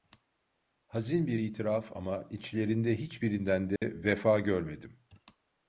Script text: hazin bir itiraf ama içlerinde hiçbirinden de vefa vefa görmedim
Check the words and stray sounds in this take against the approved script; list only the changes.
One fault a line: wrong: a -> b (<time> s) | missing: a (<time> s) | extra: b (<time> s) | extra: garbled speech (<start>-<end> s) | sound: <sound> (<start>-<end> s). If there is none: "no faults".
sound: dropout (3.8-3.8 s)
missing: vefa (4.4 s)